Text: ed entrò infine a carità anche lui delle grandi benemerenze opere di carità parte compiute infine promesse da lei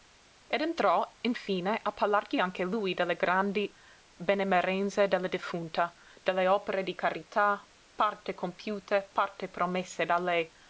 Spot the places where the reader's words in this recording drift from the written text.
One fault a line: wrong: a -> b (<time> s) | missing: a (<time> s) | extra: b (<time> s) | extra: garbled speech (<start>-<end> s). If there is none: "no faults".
wrong: carità -> parlargli (1.9 s)
extra: della defunta delle (5.1 s)
wrong: infine -> parte (9.1 s)